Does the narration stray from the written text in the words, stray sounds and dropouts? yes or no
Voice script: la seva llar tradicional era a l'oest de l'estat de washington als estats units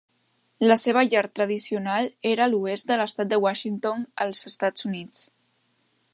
no